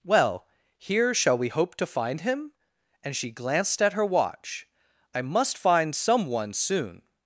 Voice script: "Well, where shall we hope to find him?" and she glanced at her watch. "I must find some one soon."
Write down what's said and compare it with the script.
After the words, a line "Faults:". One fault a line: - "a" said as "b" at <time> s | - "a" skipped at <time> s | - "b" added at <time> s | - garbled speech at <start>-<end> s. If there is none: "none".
"Well, here shall we hope to find him?" and she glanced at her watch. "I must find some one soon."
Faults:
- "where" said as "here" at 0.8 s